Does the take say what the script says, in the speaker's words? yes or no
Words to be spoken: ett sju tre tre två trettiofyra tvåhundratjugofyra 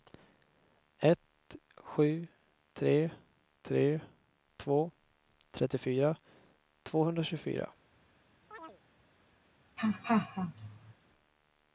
yes